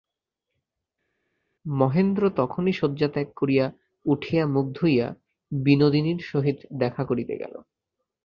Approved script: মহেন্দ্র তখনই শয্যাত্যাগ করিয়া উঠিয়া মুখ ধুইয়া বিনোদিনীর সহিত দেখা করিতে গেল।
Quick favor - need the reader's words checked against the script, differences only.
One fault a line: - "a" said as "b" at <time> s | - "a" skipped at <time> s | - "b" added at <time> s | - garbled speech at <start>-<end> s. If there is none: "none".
none